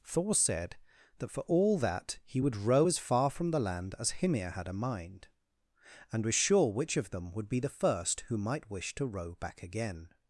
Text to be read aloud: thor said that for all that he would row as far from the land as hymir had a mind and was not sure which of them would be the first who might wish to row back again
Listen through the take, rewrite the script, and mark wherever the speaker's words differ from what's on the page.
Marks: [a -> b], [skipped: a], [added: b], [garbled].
thor said that for all that he would row as far from the land as hymir had a mind and was [skipped: not] sure which of them would be the first who might wish to row back again